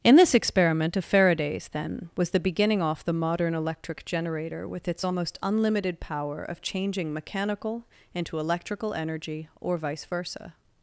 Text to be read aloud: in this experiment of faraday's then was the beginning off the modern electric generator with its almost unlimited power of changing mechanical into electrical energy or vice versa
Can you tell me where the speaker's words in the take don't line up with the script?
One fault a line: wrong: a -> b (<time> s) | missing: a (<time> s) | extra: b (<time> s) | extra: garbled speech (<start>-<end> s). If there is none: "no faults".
no faults